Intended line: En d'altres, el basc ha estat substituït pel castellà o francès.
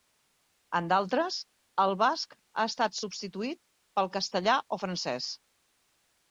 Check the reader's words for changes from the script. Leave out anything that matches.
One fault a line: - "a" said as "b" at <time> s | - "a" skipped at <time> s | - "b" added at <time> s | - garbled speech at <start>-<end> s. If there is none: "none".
none